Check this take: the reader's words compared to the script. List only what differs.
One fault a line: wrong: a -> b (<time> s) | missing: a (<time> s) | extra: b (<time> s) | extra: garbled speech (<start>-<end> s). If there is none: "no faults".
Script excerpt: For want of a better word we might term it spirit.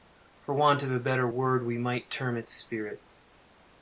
no faults